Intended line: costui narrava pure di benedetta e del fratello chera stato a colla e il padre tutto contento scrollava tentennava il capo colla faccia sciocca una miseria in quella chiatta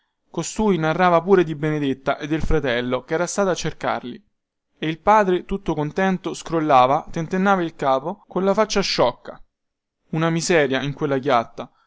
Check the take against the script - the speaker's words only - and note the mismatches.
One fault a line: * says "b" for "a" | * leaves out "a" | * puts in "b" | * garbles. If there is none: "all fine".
* says "cercarli" for "colla"